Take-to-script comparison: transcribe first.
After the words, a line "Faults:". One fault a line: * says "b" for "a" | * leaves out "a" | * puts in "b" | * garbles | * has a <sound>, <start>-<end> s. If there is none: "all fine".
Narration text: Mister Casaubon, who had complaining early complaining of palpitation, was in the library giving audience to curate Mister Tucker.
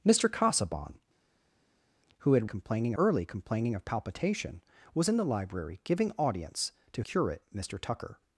Mister Casaubon, who had complaining early complaining of palpitation, was in the library giving audience to curate Mister Tucker.
Faults:
all fine